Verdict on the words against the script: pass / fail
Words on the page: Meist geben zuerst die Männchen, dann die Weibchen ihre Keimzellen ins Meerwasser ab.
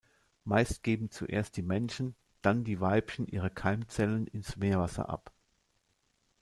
pass